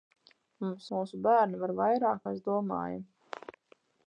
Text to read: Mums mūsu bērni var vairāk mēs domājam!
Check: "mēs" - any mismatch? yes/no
no